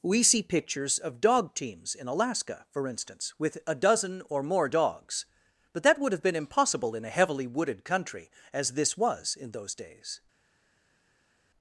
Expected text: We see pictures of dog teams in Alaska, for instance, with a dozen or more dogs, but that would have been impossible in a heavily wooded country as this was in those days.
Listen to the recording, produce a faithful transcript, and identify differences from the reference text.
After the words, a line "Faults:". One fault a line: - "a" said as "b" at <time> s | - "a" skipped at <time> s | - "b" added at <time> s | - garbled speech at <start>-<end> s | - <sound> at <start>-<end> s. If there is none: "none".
We see pictures of dog teams in Alaska, for instance, with a dozen or more dogs, but that would have been impossible in a heavily wooded country as this was in those days.
Faults:
none